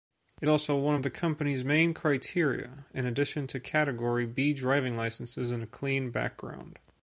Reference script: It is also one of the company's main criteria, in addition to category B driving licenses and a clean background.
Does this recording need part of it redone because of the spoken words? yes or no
yes